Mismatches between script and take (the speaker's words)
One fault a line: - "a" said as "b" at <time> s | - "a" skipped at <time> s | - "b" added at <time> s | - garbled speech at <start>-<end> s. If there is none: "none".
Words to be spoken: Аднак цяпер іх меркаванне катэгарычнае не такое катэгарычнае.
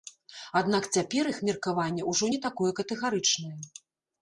- "катэгарычнае" said as "ўжо" at 2.1 s